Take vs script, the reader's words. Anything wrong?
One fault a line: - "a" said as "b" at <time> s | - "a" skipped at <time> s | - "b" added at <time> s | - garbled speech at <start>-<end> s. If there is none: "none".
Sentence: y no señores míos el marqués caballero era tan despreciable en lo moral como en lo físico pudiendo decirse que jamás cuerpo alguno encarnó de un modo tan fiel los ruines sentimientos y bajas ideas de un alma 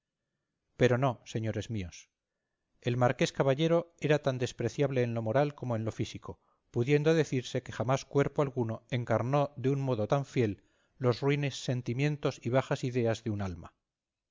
- "y" said as "pero" at 0.8 s